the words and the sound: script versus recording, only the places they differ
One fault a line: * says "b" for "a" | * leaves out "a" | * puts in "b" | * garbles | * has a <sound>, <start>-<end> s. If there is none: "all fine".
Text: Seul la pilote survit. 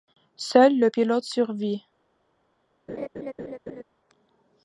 * says "le" for "la"
* has a laugh, 2.9-3.8 s